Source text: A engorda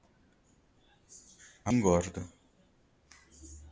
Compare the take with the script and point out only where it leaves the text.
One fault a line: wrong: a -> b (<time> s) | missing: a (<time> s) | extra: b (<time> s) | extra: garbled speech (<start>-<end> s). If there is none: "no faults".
no faults